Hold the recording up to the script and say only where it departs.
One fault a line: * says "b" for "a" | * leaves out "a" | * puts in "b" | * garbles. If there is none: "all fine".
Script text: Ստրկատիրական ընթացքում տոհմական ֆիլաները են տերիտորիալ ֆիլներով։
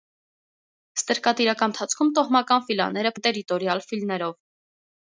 all fine